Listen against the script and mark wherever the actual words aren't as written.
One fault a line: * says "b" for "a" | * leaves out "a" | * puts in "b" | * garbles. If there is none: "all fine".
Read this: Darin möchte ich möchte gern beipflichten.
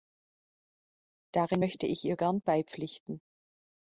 * says "ihr" for "möchte"